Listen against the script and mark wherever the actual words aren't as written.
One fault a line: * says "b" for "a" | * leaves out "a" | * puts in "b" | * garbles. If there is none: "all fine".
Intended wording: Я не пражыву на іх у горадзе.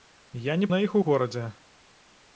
* leaves out "пражыву"